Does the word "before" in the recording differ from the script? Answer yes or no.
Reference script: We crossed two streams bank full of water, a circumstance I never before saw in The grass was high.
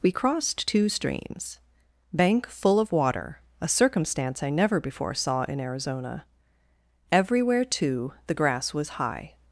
no